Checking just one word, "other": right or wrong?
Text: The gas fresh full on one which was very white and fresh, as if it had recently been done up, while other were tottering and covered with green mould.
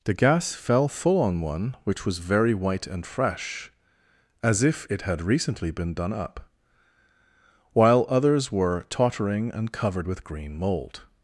wrong